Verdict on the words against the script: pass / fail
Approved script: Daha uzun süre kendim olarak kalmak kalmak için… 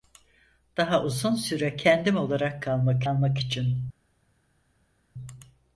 pass